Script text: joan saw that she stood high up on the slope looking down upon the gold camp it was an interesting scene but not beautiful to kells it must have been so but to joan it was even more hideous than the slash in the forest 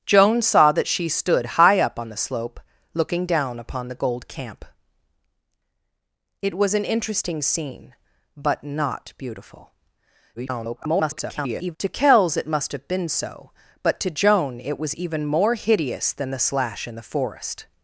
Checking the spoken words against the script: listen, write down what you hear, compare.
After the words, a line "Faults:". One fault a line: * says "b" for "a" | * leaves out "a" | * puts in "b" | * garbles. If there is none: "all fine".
joan saw that she stood high up on the slope looking down upon the gold camp it was an interesting scene but not beautiful [garbled] to kells it must have been so but to joan it was even more hideous than the slash in the forest
Faults:
* garbles